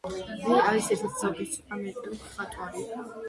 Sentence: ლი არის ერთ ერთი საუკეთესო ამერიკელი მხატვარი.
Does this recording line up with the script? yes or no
yes